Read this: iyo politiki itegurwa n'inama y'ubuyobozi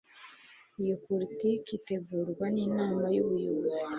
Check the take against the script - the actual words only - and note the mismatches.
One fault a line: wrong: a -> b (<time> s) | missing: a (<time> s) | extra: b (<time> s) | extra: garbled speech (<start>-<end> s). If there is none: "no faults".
no faults